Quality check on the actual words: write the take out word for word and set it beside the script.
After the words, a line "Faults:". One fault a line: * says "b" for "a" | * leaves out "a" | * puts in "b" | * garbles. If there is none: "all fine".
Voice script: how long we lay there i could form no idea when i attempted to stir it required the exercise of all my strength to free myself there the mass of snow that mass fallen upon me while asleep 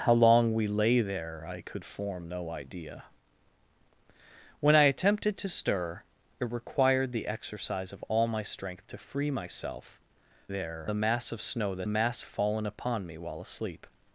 how long we lay there i could form no idea when i attempted to stir it required the exercise of all my strength to free myself there the mass of snow that mass fallen upon me while asleep
Faults:
all fine